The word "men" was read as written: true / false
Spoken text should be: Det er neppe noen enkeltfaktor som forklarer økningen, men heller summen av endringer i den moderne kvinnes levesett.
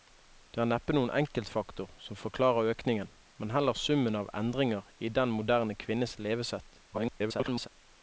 true